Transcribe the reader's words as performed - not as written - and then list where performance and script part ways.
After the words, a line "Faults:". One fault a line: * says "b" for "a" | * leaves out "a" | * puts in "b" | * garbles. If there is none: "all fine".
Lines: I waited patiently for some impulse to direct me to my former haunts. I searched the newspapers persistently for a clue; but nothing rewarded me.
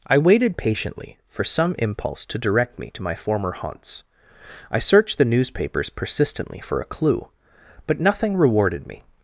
I waited patiently for some impulse to direct me to my former haunts. I searched the newspapers persistently for a clue; but nothing rewarded me.
Faults:
all fine